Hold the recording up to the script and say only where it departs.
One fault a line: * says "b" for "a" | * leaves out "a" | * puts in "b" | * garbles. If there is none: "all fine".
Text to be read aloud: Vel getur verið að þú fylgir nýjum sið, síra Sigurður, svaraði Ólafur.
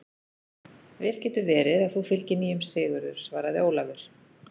* leaves out "sið síra"